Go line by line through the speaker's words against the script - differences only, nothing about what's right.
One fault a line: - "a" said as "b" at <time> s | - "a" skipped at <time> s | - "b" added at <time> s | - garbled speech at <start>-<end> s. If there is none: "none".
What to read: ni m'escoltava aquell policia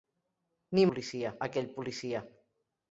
- "m'escoltava" said as "policia" at 0.9 s